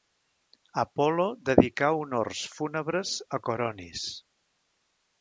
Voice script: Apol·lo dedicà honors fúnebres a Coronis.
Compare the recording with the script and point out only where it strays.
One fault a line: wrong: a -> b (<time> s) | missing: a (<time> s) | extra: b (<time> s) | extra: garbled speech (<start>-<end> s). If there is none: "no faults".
no faults